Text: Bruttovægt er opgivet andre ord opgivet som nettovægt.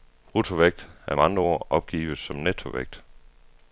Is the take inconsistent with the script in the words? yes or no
yes